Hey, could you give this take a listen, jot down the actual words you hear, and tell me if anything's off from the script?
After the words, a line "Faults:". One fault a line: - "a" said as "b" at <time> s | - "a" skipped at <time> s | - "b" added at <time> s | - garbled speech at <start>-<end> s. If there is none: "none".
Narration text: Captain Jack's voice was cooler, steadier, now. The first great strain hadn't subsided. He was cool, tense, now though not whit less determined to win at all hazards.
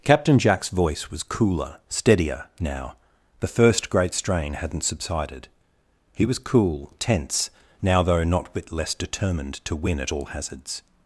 Captain Jack's voice was cooler, steadier, now. The first great strain hadn't subsided. He was cool, tense, now though not whit less determined to win at all hazards.
Faults:
none